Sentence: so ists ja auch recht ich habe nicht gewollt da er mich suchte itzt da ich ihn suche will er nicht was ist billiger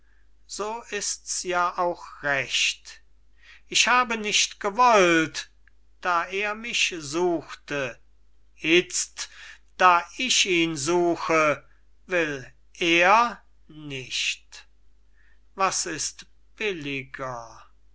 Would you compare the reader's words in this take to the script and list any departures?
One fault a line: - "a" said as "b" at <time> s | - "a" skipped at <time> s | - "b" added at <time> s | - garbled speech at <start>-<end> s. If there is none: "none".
none